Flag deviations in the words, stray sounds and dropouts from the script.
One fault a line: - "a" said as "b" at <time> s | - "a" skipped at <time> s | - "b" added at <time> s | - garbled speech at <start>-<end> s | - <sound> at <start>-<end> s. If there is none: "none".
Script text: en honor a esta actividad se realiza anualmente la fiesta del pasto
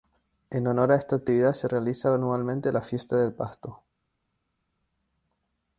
none